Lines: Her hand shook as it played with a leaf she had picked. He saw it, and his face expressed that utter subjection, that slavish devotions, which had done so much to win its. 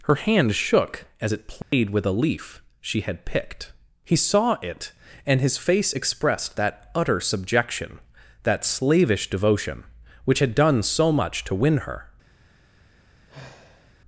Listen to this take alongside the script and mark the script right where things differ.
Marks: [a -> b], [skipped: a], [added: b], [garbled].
Her hand shook as it played with a leaf she had picked. He saw it, and his face expressed that utter subjection, that slavish [devotions, -> devotion] which had done so much to win [its. -> her]